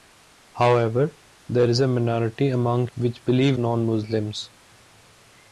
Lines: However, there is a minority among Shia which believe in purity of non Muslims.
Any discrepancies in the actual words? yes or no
yes